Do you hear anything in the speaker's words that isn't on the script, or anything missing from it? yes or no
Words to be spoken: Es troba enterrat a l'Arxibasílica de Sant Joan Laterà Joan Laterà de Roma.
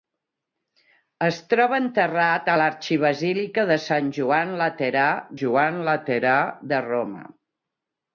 no